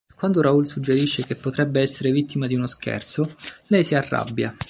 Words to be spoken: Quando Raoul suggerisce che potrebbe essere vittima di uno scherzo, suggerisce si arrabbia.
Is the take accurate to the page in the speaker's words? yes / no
no